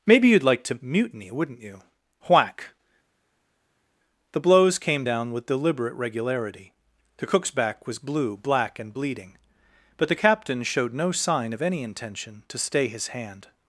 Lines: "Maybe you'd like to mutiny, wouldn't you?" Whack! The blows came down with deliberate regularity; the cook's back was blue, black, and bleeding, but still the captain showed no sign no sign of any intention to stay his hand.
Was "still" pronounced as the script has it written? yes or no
no